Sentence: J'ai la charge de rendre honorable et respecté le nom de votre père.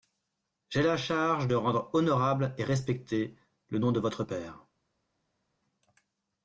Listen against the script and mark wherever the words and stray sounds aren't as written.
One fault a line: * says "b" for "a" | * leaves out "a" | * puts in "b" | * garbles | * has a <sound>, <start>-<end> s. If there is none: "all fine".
all fine